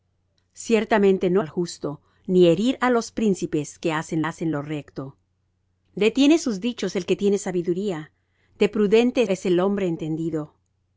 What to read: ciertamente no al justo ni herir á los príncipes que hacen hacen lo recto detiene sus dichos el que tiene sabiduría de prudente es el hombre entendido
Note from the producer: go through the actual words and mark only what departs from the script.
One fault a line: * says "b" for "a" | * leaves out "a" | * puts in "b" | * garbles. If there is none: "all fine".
all fine